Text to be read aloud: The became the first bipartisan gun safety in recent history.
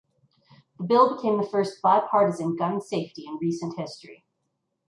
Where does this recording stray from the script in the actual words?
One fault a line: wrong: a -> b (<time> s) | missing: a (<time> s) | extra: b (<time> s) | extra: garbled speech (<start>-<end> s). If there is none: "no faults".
extra: bill (0.8 s)